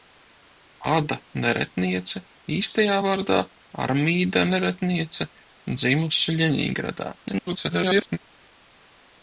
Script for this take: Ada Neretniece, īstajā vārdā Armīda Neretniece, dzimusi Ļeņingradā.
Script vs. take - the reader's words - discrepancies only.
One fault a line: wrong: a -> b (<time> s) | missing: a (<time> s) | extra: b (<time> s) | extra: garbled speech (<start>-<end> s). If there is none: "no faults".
extra: garbled speech (7.2-8.2 s)